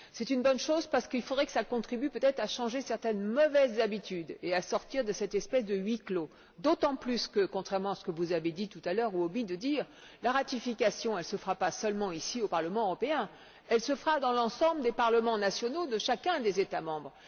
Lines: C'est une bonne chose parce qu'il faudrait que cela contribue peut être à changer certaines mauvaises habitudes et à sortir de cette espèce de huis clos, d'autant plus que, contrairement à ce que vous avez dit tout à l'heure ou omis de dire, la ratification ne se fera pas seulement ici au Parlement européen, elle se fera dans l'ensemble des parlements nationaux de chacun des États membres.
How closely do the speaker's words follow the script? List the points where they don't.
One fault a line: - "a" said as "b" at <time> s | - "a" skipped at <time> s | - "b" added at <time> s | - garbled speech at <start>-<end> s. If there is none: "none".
none